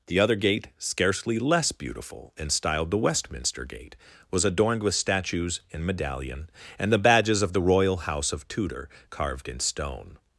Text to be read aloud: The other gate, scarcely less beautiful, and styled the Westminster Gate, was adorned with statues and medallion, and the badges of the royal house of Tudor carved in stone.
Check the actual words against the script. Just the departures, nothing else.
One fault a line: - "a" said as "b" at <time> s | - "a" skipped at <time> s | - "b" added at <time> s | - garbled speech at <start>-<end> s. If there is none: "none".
none